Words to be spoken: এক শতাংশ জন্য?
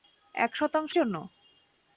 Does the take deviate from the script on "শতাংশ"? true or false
false